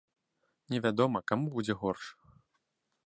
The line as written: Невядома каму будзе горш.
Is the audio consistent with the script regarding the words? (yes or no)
yes